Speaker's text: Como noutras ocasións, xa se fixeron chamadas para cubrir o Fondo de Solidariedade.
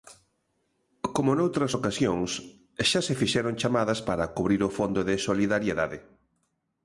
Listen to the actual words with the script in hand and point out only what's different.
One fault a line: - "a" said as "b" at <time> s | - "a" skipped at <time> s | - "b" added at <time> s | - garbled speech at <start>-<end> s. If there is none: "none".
none